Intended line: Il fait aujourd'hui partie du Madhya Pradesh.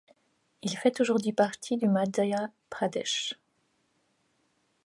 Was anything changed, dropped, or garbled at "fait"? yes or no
no